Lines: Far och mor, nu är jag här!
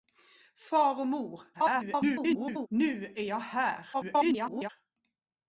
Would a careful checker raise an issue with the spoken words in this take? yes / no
yes